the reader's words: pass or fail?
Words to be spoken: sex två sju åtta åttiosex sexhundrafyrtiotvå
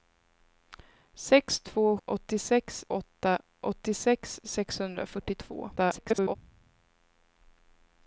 fail